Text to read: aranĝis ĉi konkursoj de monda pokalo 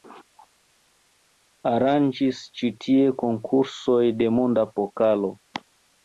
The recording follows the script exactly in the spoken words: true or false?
false